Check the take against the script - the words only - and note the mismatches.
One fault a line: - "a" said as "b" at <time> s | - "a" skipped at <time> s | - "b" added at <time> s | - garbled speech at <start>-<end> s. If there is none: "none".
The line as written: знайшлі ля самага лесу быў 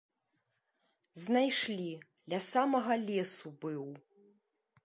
none